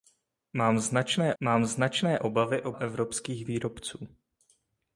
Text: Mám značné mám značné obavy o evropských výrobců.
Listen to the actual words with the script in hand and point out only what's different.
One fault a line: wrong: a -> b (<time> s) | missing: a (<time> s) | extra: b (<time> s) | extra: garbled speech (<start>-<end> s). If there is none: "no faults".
no faults